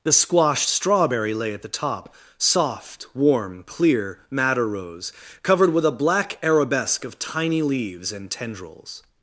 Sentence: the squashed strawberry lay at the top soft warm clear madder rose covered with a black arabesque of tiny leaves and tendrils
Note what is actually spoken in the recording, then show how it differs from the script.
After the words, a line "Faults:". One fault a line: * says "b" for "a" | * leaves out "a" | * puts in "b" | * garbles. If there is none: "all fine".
the squashed strawberry lay at the top soft warm clear madder rose covered with a black arabesque of tiny leaves and tendrils
Faults:
all fine